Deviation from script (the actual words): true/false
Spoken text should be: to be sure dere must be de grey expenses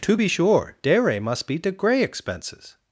false